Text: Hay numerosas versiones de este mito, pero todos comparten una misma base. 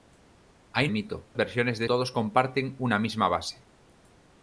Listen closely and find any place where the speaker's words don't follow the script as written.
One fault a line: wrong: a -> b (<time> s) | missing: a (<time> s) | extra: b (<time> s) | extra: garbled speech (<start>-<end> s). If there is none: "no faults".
wrong: numerosas -> mito (0.9 s)
missing: este mito pero (1.8 s)